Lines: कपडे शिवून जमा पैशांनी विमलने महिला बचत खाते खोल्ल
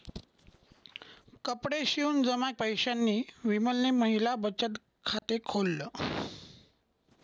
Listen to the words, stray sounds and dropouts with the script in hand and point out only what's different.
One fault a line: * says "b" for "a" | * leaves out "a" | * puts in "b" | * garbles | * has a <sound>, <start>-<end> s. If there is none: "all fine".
* has a dropout, 5.2-5.2 s